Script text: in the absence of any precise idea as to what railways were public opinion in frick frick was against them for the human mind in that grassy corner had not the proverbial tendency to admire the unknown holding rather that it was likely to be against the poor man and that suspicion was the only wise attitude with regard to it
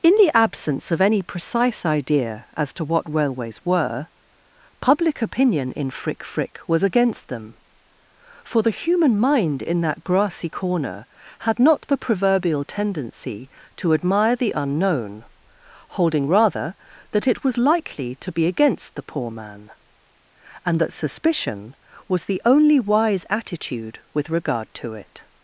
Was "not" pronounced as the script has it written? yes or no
yes